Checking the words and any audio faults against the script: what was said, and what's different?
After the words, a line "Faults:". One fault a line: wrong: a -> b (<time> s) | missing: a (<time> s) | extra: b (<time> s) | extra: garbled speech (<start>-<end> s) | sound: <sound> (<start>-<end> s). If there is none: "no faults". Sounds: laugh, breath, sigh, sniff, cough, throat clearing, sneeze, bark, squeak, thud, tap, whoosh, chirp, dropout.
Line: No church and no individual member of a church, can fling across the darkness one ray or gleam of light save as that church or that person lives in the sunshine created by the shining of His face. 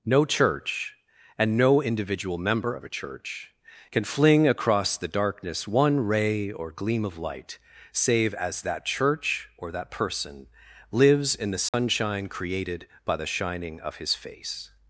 No church and no individual member of a church, can fling across the darkness one ray or gleam of light save as that church or that person lives in the sunshine created by the shining of His face.
Faults:
sound: dropout (11.7-11.7 s)